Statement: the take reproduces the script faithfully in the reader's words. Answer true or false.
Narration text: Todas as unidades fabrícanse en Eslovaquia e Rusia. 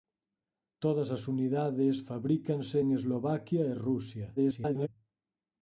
false